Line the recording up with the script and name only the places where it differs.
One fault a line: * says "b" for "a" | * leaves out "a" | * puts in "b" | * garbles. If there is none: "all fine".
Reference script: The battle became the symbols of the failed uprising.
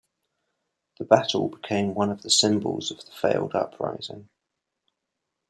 * puts in "one of"